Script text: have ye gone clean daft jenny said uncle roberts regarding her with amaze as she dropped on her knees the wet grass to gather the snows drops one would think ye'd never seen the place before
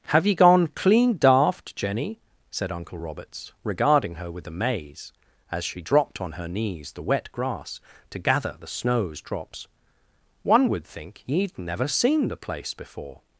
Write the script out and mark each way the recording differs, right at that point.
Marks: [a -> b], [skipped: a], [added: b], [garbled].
have ye gone clean daft jenny said uncle roberts regarding her with amaze as she dropped on her knees the wet grass to gather the snows drops one would think ye'd never seen the place before